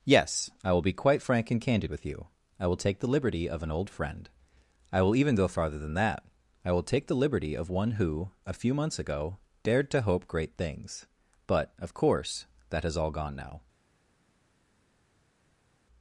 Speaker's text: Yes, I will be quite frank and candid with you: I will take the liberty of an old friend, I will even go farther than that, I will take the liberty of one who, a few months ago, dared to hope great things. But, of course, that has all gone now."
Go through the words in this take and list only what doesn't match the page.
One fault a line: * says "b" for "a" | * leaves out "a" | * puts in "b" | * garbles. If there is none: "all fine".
all fine